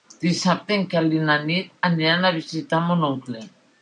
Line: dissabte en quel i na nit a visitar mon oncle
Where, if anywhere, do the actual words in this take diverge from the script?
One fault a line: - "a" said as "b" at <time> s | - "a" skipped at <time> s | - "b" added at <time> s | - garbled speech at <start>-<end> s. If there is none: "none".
- "aniran" added at 1.9 s